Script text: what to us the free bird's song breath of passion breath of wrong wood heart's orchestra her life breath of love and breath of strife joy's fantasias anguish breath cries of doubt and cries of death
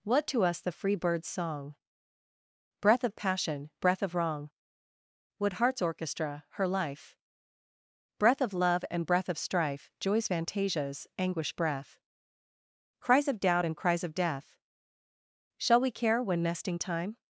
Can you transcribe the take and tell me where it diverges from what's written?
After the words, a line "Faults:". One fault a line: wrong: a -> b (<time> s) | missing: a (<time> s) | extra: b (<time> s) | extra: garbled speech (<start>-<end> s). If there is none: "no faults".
what to us the free bird's song breath of passion breath of wrong wood heart's orchestra her life breath of love and breath of strife joy's fantasias anguish breath cries of doubt and cries of death shall we care when nesting time
Faults:
extra: shall we care when nesting time (15.6 s)